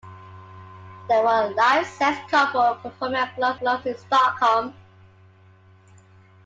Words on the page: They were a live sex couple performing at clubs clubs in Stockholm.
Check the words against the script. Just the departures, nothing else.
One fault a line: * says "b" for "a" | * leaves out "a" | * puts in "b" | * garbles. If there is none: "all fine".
all fine